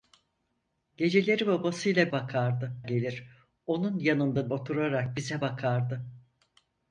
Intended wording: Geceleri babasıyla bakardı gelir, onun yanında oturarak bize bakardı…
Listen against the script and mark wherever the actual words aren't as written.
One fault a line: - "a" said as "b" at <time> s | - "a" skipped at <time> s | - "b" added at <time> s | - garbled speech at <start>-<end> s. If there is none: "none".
none